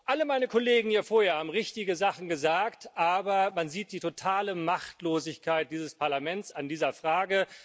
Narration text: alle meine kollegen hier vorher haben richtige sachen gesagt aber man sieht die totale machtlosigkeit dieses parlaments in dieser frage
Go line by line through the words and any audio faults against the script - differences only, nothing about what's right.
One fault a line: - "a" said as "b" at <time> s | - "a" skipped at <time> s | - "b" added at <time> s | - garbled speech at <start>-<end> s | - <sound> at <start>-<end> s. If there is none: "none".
none